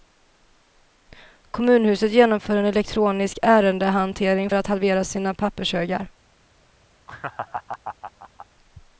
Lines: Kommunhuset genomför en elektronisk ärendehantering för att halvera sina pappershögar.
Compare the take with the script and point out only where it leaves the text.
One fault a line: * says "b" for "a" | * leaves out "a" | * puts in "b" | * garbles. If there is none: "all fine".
* leaves out "för"